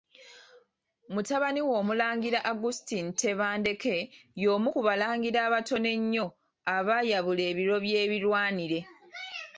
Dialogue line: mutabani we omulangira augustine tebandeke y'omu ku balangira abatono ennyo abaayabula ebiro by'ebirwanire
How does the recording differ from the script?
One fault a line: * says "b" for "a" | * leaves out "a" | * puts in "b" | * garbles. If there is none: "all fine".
all fine